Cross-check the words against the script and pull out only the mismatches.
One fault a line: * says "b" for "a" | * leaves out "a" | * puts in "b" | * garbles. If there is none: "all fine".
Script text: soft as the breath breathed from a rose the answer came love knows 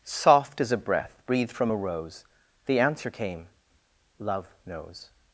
* says "a" for "the"